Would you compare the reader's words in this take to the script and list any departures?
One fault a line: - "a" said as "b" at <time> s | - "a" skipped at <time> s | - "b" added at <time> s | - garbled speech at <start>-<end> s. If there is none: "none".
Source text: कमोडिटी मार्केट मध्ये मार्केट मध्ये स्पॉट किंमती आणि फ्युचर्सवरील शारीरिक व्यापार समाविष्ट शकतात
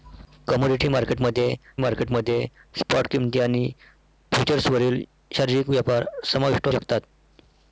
none